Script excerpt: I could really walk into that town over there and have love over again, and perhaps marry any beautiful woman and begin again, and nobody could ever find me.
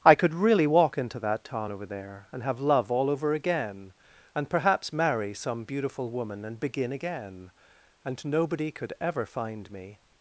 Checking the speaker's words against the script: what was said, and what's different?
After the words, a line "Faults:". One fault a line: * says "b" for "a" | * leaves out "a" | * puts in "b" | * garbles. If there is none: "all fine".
I could really walk into that town over there and have love all over again, and perhaps marry some beautiful woman and begin again, and nobody could ever find me.
Faults:
* puts in "all"
* says "some" for "any"